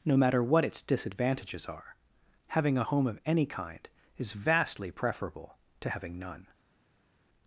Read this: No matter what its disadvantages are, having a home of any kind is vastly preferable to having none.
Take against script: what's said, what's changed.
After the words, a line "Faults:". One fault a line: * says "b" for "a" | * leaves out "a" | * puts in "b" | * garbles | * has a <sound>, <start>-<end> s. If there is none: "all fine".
No matter what its disadvantages are, having a home of any kind is vastly preferable to having none.
Faults:
all fine